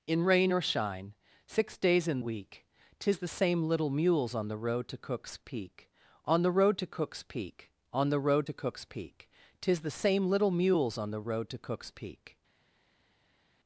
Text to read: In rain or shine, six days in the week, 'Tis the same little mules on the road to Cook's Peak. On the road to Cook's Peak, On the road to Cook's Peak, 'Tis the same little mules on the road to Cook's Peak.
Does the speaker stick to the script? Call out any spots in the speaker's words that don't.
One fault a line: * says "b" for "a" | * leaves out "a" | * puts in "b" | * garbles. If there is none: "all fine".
* leaves out "the"